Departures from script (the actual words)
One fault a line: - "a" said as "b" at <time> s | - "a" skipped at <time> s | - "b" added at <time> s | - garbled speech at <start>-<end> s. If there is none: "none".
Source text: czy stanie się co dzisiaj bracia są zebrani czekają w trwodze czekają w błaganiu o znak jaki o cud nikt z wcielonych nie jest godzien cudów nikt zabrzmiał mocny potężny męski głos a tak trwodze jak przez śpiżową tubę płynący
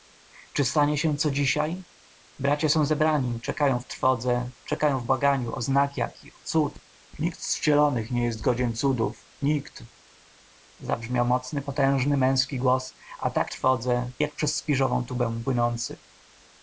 none